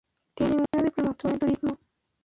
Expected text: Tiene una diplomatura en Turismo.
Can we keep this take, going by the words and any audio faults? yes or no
no